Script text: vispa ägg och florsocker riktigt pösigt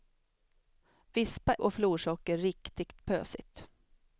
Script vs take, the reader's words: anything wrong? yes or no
yes